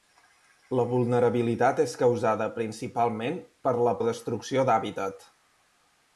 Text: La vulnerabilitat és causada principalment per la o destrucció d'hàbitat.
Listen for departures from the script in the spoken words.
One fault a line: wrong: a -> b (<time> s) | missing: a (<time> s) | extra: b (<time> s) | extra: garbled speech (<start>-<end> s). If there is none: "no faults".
no faults